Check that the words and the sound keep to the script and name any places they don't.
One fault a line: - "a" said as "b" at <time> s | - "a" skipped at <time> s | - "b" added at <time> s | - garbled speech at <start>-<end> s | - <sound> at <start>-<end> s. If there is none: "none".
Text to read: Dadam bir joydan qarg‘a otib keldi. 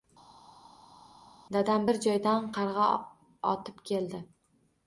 none